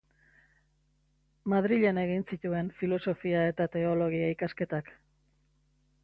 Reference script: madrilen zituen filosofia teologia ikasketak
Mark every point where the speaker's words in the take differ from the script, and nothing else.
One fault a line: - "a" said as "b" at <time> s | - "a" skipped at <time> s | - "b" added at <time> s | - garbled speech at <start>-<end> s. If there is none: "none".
- "egin" added at 2.0 s
- "eta" added at 3.5 s